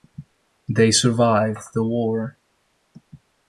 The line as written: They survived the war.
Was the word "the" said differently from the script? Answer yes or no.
no